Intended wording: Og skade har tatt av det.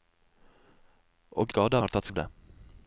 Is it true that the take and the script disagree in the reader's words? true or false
false